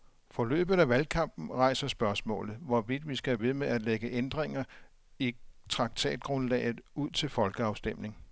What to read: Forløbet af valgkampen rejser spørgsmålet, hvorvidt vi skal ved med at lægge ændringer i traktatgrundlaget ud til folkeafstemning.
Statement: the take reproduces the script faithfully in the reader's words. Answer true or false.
true